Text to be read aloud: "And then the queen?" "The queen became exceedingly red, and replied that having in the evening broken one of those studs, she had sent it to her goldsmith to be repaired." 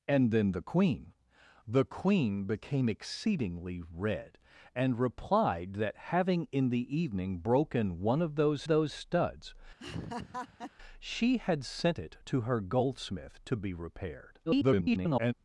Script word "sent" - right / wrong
right